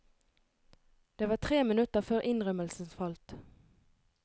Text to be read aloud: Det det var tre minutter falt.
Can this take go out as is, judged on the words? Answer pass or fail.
fail